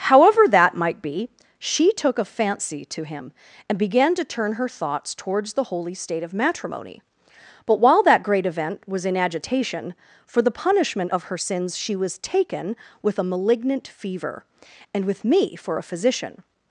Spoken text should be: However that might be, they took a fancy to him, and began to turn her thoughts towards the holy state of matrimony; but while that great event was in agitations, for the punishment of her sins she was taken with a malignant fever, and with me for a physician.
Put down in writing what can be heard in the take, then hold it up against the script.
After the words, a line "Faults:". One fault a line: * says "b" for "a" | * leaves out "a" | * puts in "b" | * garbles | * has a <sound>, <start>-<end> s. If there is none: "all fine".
However that might be, she took a fancy to him, and began to turn her thoughts towards the holy state of matrimony; but while that great event was in agitation, for the punishment of her sins she was taken with a malignant fever, and with me for a physician.
Faults:
* says "she" for "they"
* says "agitation" for "agitations"